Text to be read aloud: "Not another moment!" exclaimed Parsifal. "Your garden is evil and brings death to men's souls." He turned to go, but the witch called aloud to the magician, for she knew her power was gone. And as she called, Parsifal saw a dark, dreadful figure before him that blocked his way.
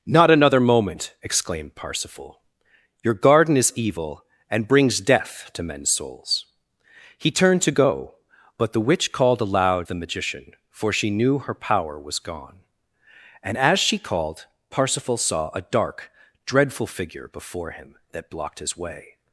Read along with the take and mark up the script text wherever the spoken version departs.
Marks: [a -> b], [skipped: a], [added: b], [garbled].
"Not another moment!" exclaimed Parsifal. "Your garden is evil and brings death to men's souls." He turned to go, but the witch called aloud [skipped: to] the magician, for she knew her power was gone. And as she called, Parsifal saw a dark, dreadful figure before him that blocked his way.